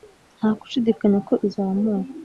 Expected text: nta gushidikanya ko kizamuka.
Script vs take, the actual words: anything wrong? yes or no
no